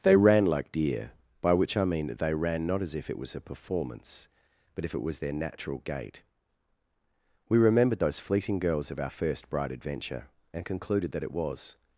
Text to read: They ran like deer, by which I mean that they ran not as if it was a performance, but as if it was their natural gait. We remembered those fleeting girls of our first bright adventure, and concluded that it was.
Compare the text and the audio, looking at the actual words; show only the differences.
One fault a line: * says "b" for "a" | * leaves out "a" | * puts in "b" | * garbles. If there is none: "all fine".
* leaves out "as"